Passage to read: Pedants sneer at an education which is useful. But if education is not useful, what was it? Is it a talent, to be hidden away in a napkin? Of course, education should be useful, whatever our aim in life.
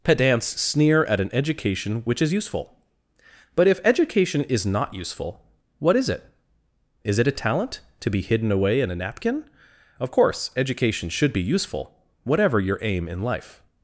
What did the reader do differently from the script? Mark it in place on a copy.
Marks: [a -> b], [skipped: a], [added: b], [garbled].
Pedants sneer at an education which is useful. But if education is not useful, what [was -> is] it? Is it a talent, to be hidden away in a napkin? Of course, education should be useful, whatever [our -> your] aim in life.